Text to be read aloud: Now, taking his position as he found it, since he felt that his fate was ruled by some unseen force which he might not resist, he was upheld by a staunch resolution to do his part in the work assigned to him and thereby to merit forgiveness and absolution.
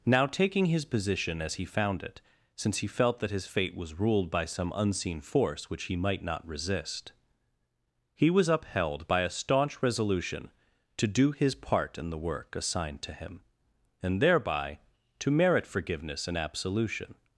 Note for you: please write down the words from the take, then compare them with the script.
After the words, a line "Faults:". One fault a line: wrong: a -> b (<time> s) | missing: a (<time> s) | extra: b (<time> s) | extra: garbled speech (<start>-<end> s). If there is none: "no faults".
Now, taking his position as he found it, since he felt that his fate was ruled by some unseen force which he might not resist, he was upheld by a staunch resolution to do his part in the work assigned to him and thereby to merit forgiveness and absolution.
Faults:
no faults